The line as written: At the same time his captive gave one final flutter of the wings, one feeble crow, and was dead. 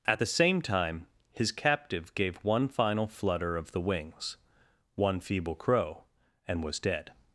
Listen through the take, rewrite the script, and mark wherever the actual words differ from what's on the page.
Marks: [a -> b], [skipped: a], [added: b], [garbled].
At the same time his captive gave one final flutter of the wings, one feeble crow, and was dead.